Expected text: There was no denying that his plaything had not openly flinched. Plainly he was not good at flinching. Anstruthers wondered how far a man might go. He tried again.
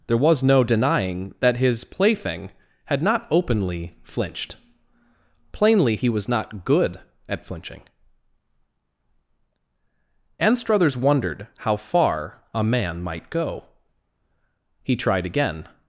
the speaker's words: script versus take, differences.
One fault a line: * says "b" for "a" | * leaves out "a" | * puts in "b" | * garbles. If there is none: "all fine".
all fine